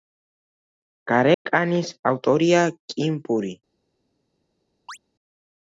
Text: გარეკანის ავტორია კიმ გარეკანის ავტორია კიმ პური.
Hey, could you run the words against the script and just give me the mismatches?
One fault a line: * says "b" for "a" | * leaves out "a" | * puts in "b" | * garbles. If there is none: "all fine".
* leaves out "გარეკანის ავტორია კიმ"